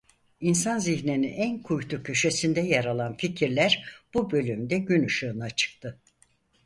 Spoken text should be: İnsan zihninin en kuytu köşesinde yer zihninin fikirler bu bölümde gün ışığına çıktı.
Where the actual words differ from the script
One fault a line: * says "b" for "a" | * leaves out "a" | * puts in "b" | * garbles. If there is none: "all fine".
* says "alan" for "zihninin"